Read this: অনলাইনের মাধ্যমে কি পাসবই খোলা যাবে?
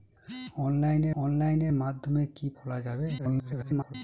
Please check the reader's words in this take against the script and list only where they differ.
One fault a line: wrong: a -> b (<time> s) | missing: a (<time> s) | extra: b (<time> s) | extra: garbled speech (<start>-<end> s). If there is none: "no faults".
extra: অনলাইনের (1.2 s)
missing: পাসবই (2.5 s)
extra: garbled speech (3.2-3.9 s)